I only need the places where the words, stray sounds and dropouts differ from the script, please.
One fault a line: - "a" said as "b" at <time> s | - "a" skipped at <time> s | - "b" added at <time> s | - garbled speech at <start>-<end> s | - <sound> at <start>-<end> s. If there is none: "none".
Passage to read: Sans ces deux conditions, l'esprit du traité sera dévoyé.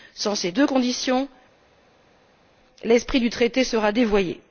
none